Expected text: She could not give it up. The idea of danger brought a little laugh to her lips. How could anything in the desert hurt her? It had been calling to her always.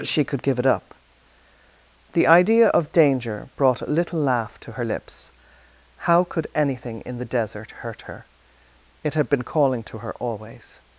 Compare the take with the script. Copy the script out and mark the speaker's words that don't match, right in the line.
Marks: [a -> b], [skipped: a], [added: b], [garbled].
She could [skipped: not] give it up. The idea of danger brought a little laugh to her lips. How could anything in the desert hurt her? It had been calling to her always.